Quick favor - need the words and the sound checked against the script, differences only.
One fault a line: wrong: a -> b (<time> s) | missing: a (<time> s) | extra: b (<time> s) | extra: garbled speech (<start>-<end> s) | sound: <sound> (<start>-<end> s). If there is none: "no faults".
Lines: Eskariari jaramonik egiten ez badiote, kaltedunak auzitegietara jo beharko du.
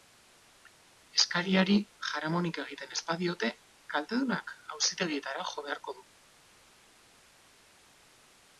no faults